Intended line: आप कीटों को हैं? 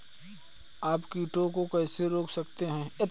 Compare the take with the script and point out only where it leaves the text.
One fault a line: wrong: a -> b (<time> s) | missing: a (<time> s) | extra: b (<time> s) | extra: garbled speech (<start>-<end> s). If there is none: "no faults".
extra: कैसे रोक सकते (1.7 s)